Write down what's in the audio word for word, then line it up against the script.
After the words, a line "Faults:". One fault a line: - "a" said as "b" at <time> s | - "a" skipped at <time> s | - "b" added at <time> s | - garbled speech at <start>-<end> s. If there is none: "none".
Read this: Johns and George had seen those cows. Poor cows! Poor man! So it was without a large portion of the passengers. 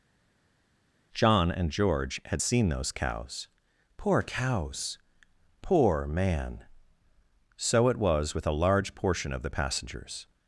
John and George had seen those cows. Poor cows! Poor man! So it was with a large portion of the passengers.
Faults:
- "Johns" said as "John" at 1.1 s
- "without" said as "with" at 8.3 s